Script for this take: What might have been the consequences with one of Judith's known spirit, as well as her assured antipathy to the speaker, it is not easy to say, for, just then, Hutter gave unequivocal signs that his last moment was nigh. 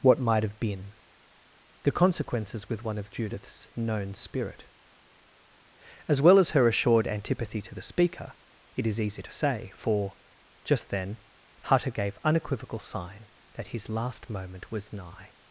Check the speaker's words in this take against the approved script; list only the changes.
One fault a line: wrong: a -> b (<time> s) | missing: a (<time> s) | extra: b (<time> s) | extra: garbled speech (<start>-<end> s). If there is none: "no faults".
missing: not (9.0 s)
wrong: signs -> sign (12.8 s)